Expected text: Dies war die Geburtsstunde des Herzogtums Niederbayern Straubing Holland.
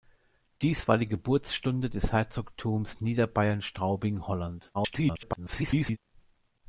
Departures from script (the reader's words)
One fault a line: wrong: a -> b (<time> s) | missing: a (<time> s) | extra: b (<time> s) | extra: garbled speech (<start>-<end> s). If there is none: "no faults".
extra: garbled speech (4.7-6.0 s)